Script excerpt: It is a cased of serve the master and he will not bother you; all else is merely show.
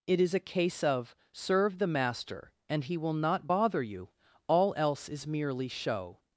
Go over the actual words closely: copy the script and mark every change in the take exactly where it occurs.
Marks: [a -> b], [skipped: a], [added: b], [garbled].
It is a [cased -> case] of serve the master and he will not bother you; all else is merely show.